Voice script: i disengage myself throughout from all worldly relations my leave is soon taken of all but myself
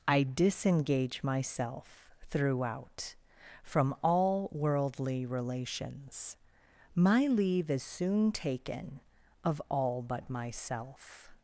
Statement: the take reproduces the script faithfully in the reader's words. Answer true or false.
true